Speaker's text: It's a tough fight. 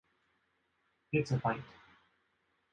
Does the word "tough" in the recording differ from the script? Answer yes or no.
yes